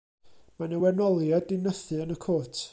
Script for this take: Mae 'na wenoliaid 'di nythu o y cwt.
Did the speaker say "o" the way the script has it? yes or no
no